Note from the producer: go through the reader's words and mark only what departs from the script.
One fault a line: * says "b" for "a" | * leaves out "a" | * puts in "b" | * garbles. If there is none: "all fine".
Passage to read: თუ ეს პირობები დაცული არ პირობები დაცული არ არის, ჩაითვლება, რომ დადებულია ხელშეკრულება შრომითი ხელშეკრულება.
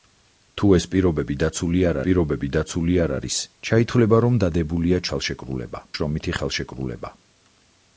all fine